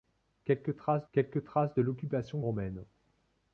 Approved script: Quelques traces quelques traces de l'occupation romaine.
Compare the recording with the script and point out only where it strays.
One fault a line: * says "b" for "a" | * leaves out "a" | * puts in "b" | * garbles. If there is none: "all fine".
all fine